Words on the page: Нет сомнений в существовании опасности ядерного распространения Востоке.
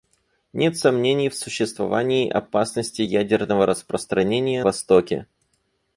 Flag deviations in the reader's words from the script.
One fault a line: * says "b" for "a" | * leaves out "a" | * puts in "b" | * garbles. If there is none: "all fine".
all fine